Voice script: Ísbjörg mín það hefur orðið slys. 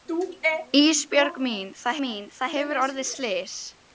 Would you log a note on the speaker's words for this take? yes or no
yes